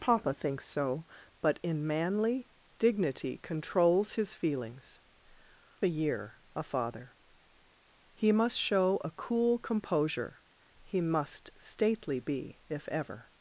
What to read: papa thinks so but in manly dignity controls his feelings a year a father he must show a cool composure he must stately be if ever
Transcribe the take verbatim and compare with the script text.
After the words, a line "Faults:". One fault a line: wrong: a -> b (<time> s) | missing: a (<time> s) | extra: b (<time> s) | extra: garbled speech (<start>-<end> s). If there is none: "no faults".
papa thinks so but in manly dignity controls his feelings a year a father he must show a cool composure he must stately be if ever
Faults:
no faults